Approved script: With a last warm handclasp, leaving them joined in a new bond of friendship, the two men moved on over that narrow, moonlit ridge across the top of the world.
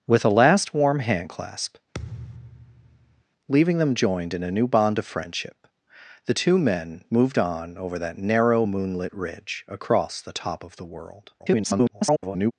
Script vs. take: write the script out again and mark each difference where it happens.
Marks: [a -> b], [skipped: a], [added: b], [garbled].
With a last warm handclasp, leaving them joined in a new bond of friendship, the two men moved on over that narrow, moonlit ridge across the top of the world. [garbled]